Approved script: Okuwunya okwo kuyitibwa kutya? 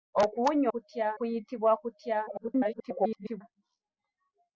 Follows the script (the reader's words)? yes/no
no